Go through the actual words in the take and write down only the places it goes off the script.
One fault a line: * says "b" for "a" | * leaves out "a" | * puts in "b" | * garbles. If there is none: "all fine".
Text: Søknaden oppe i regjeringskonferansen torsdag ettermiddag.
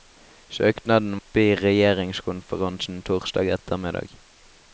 all fine